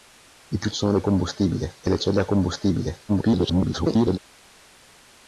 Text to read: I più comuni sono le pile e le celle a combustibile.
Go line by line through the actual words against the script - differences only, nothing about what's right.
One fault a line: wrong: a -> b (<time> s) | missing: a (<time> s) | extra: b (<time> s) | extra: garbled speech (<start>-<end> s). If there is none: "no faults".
missing: comuni (0.7 s)
wrong: pile -> combustibile (1.0 s)
extra: garbled speech (3.1-4.2 s)